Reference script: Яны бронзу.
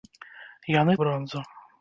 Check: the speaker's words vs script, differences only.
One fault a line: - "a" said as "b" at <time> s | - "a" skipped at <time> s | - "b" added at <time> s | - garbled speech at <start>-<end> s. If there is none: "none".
none